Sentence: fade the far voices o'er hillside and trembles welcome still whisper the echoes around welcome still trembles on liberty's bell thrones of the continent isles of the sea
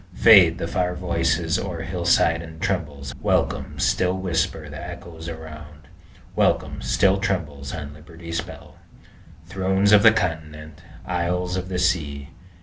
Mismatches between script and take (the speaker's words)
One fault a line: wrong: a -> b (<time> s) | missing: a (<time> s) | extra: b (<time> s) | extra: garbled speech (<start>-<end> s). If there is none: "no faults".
no faults